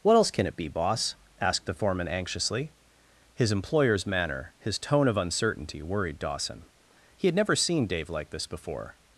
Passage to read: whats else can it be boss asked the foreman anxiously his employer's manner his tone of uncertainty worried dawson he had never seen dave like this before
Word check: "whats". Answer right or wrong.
wrong